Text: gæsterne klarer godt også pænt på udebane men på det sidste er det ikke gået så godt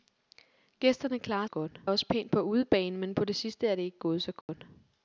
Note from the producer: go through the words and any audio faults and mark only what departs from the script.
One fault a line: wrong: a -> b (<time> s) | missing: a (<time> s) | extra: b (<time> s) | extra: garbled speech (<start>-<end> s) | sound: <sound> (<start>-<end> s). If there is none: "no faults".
sound: dropout (4.4-4.5 s)